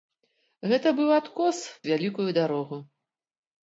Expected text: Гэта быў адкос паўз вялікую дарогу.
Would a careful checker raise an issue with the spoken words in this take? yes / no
yes